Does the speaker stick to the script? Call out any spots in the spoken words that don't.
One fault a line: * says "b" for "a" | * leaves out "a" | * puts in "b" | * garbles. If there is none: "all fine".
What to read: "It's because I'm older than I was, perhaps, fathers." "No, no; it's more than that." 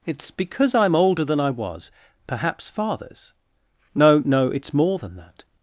all fine